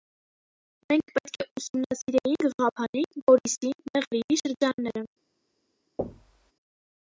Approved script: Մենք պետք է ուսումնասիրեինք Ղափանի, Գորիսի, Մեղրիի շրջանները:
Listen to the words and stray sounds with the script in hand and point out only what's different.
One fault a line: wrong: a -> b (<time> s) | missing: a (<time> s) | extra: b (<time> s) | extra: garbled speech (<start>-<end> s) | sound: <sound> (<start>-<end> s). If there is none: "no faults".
sound: thud (6.0-6.5 s)